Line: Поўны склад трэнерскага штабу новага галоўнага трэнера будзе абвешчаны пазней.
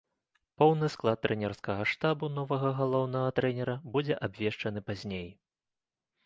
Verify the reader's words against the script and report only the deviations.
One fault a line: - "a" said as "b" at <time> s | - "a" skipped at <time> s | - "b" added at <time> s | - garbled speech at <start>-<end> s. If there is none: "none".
none